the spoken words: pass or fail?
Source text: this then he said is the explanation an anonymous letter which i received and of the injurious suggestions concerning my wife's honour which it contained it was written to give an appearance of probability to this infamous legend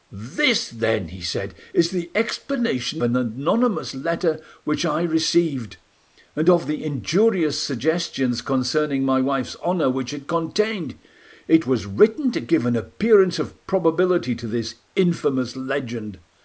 pass